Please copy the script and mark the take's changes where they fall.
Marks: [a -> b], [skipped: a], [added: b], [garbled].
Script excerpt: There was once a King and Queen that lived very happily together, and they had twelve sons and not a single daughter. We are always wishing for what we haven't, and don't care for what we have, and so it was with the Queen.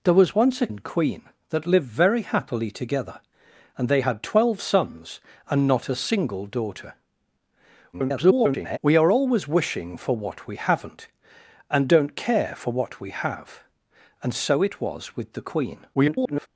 There was once a [skipped: King] and Queen that lived very happily together, and they had twelve sons and not a single daughter. [garbled] We are always wishing for what we haven't, and don't care for what we have, and so it was with the Queen. [garbled]